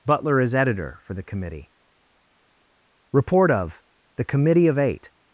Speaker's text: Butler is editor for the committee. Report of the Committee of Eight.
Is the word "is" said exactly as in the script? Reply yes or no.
yes